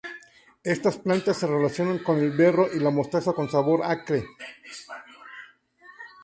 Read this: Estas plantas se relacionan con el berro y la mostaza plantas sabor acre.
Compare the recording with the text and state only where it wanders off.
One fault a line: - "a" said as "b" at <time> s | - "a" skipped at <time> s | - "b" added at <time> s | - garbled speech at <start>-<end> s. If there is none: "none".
- "plantas" said as "con" at 3.3 s